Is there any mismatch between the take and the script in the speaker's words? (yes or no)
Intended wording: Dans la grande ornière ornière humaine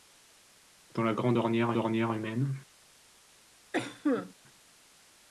no